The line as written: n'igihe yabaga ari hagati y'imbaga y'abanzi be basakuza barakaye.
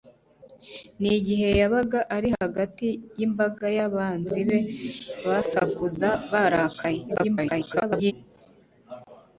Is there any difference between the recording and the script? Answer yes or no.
yes